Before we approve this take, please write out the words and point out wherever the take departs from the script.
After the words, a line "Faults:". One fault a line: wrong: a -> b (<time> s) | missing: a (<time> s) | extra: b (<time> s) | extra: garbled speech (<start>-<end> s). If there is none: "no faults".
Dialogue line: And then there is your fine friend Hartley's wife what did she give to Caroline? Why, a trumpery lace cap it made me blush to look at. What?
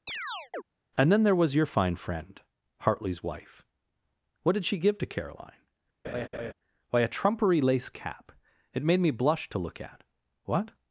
And then there was your fine friend Hartley's wife what did she give to Caroline? Why, a trumpery lace cap it made me blush to look at. What?
Faults:
wrong: is -> was (1.4 s)